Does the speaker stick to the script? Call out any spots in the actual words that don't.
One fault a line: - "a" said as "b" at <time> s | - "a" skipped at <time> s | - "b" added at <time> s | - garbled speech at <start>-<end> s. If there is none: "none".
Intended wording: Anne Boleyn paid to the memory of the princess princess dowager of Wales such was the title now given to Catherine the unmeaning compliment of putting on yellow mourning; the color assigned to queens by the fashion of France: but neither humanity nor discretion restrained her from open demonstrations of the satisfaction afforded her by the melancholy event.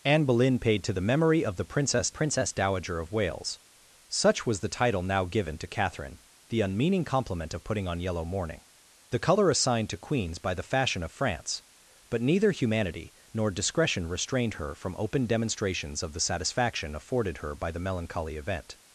none